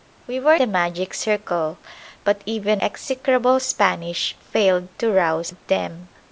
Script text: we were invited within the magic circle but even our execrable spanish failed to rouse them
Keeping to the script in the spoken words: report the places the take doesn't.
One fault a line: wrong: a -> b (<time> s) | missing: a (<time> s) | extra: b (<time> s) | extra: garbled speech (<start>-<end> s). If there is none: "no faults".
missing: invited within (0.6 s)
missing: our (2.8 s)